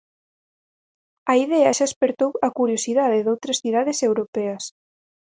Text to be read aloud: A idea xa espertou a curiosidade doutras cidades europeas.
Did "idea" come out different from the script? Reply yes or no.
no